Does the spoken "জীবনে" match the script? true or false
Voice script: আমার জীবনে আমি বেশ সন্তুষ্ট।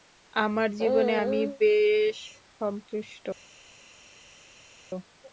true